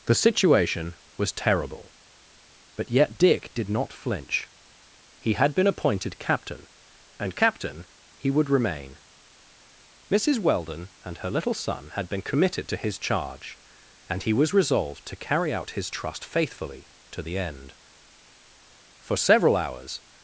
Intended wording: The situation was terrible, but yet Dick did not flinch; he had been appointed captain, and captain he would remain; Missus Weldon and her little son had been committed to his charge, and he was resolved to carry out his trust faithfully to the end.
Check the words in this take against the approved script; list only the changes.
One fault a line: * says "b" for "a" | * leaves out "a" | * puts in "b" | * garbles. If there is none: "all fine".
* puts in "For several hours"